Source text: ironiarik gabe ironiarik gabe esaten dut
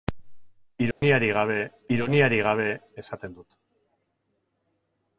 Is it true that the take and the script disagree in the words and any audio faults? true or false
true